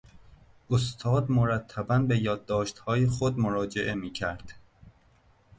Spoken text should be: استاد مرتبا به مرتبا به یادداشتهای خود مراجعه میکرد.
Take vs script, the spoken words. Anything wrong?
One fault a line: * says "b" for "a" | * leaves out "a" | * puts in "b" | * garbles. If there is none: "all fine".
* leaves out "مرتبا به"